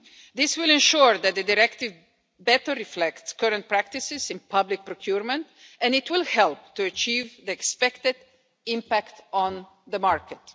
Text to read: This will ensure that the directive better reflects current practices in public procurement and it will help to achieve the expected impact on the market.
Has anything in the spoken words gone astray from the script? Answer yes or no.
no